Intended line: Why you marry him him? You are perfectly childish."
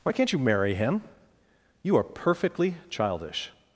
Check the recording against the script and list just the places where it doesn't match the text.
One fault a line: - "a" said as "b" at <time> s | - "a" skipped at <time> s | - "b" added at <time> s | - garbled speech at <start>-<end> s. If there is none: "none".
- "can't" added at 0.1 s
- "him" skipped at 1.0 s